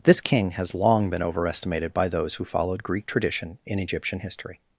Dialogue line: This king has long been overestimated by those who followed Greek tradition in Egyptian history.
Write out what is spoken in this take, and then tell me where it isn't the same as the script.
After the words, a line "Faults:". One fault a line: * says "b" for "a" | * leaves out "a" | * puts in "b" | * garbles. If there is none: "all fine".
This king has long been overestimated by those who followed Greek tradition in Egyptian history.
Faults:
all fine